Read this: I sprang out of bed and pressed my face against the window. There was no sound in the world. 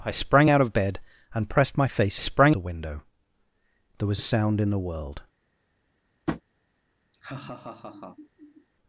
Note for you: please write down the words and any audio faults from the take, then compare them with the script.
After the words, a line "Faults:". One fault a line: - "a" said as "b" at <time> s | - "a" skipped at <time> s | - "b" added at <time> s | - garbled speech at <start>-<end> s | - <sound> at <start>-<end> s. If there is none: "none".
I sprang out of bed and pressed my face sprang the window. There was sound in the world.
Faults:
- "against" said as "sprang" at 2.2 s
- "no" skipped at 4.2 s
- tap at 6.3-6.4 s
- laugh at 7.1-8.7 s